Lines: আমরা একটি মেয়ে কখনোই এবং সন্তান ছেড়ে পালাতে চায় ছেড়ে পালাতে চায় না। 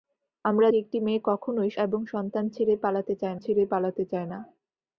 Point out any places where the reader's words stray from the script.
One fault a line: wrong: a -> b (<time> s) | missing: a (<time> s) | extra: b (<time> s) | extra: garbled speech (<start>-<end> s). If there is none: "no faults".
no faults